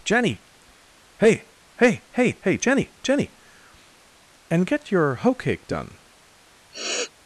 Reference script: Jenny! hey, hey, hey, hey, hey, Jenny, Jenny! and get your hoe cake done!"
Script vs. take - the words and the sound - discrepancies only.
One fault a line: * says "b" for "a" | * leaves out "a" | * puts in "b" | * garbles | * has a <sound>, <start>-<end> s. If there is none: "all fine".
* leaves out "hey"
* has a sniff, 6.7-7.1 s